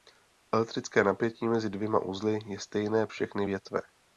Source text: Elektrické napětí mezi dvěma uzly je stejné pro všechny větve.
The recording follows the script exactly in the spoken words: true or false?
false